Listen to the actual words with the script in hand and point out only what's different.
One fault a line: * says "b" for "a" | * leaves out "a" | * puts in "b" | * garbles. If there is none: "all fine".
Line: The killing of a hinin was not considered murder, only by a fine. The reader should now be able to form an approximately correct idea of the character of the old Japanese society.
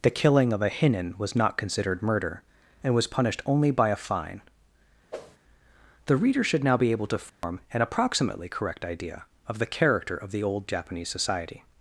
* puts in "and was punished"